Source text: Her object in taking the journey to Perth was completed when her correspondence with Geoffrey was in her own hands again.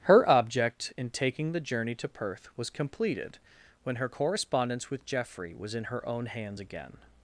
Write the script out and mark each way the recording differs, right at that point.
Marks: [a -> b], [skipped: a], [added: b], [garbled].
Her object in taking the journey to Perth was completed when her correspondence with Geoffrey was in her own hands again.